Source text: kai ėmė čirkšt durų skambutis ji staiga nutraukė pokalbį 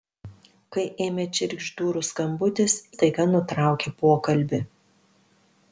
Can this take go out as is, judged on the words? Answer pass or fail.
fail